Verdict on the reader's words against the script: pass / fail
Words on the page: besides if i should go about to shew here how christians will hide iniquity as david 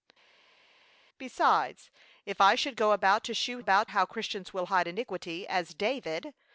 fail